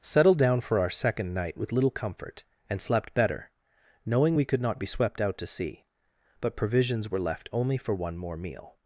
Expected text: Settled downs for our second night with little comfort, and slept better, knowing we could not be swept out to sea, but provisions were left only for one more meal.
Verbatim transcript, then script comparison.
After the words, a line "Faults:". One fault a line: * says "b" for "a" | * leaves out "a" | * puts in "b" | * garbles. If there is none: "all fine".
Settled down for our second night with little comfort, and slept better, knowing we could not be swept out to sea, but provisions were left only for one more meal.
Faults:
* says "down" for "downs"